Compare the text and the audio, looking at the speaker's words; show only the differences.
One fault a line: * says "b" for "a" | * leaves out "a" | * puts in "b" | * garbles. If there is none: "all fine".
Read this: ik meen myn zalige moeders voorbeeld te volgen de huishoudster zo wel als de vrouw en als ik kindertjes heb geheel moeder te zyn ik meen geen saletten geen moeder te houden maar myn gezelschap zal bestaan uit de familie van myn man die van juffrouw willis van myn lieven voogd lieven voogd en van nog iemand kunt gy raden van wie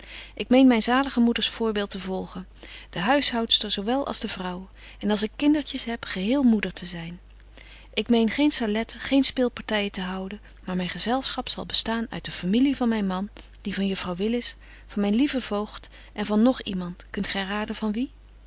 * says "speelpartyen" for "moeder"
* leaves out "lieven voogd"